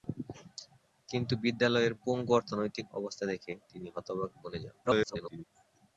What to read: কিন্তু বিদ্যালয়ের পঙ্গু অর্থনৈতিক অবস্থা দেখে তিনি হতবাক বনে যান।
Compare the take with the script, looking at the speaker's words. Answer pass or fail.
fail